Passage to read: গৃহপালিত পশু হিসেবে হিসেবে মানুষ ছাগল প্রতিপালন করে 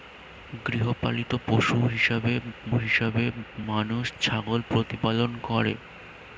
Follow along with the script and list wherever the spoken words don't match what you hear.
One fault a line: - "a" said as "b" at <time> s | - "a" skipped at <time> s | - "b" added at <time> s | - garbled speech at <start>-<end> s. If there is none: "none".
none